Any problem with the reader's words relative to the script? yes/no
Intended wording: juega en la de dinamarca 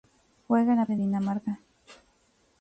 no